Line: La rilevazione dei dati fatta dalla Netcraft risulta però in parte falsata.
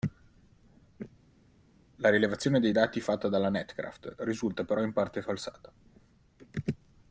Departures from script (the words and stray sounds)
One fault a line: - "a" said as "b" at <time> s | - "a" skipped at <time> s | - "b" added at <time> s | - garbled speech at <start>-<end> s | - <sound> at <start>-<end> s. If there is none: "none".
none